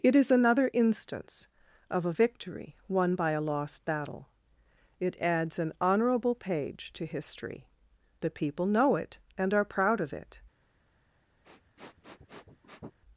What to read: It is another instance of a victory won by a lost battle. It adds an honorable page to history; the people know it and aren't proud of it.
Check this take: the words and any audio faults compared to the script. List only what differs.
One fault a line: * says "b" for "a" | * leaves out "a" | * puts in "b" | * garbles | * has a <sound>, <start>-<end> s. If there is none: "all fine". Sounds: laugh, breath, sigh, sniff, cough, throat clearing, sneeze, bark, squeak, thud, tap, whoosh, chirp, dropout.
* says "are" for "aren't"
* has a sniff, 11.4-13.0 s